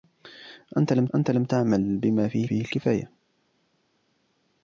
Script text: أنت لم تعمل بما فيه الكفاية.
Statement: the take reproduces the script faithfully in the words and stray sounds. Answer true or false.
false